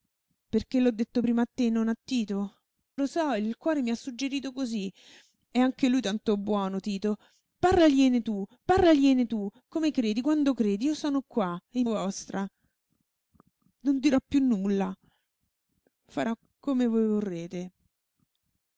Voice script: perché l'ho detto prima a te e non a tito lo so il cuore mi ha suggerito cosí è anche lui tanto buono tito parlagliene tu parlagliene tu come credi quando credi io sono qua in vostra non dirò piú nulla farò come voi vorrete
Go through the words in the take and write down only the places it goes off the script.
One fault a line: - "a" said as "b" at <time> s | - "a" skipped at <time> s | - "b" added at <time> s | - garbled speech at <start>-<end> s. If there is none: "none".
none